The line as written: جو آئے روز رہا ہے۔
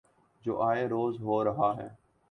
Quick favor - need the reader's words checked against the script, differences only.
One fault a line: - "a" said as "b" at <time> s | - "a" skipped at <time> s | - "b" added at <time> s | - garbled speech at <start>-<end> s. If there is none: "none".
- "ہو" added at 1.2 s